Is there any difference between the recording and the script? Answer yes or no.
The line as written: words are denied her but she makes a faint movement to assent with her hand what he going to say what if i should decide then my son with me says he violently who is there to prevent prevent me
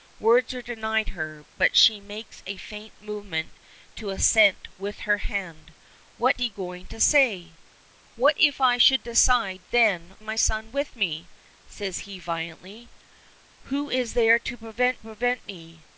no